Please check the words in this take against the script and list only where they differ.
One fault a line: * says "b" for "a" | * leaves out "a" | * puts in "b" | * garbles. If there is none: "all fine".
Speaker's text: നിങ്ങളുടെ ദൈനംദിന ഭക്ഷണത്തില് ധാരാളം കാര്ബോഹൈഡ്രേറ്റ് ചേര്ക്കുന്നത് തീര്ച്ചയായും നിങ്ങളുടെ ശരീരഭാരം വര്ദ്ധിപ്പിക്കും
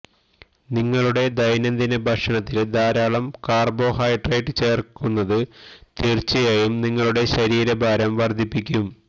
all fine